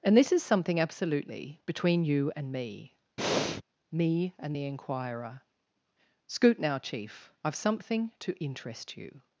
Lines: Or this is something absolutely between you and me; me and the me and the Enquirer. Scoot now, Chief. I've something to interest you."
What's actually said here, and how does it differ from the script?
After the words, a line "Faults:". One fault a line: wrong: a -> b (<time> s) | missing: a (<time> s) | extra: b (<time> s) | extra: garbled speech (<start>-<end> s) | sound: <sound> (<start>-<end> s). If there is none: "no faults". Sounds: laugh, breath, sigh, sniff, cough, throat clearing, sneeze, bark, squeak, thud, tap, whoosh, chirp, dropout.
And this is something absolutely between you and me; me and the Enquirer. Scoot now, Chief. I've something to interest you."
Faults:
wrong: Or -> And (0.0 s)
sound: breath (3.2-3.6 s)
missing: me and the (4.6 s)